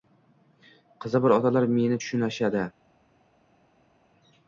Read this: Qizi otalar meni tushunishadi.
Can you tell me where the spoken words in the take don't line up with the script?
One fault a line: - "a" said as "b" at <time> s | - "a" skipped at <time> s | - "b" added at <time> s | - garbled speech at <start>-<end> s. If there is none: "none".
- "bor" added at 1.2 s